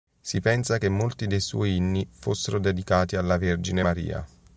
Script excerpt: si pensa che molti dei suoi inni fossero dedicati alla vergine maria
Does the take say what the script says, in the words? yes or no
yes